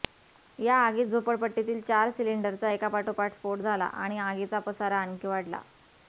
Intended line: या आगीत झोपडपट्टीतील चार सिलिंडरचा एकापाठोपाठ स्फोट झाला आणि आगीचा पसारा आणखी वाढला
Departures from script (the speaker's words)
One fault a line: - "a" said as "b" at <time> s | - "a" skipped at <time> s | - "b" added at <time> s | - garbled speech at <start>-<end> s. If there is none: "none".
none